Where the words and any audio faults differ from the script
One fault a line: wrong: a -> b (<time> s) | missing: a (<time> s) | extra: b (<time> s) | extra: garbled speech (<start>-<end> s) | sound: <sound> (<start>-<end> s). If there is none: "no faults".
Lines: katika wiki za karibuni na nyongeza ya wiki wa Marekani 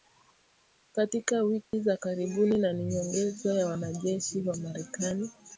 sound: dropout (1.7-1.7 s)
extra: ni (2.7 s)
wrong: wiki -> wanajeshi (3.7 s)